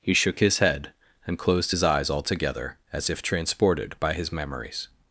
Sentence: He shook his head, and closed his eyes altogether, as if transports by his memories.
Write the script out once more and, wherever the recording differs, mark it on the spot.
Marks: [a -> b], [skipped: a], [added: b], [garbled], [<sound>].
He shook his head, and closed his eyes altogether, as if [transports -> transported] by his memories.